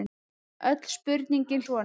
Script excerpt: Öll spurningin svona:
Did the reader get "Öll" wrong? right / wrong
right